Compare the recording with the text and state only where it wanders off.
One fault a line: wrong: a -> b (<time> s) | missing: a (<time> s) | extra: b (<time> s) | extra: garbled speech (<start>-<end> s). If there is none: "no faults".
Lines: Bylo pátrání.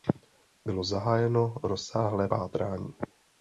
extra: zahájeno rozsáhlé (0.8 s)